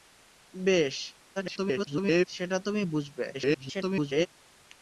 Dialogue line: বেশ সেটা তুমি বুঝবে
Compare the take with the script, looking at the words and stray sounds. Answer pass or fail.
fail